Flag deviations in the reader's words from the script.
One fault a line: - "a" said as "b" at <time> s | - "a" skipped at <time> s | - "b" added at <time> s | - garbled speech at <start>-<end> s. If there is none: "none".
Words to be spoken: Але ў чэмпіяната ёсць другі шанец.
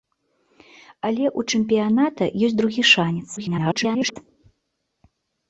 - garbled speech at 3.4-4.2 s